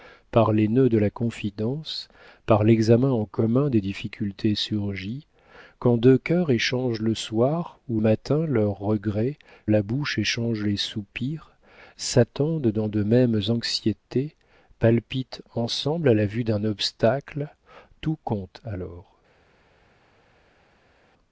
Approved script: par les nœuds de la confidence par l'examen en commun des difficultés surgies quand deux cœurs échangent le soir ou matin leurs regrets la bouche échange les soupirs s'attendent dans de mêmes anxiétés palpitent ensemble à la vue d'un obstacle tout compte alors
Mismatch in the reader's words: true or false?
false